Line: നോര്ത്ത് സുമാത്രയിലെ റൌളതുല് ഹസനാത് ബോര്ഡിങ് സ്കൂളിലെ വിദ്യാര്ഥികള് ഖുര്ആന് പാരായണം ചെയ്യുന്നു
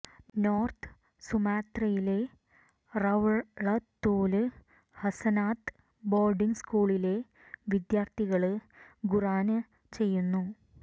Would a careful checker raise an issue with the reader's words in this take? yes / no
yes